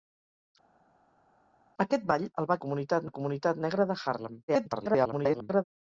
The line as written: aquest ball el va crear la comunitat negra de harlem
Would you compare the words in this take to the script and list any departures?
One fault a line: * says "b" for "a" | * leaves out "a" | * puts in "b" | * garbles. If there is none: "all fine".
* says "comunitat" for "crear"
* garbles